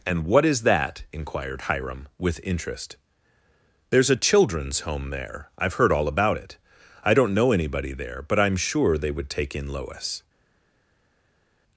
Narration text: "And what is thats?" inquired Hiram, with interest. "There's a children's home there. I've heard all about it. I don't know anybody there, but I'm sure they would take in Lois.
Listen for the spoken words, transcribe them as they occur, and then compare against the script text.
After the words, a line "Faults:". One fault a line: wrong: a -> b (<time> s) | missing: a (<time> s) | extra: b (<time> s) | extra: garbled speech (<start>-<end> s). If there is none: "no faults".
"And what is that?" inquired Hiram, with interest. "There's a children's home there. I've heard all about it. I don't know anybody there, but I'm sure they would take in Lois.
Faults:
wrong: thats -> that (0.6 s)